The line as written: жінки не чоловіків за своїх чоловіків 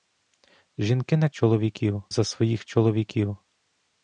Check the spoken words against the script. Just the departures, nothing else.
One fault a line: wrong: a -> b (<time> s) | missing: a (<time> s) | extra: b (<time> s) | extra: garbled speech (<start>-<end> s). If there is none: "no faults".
no faults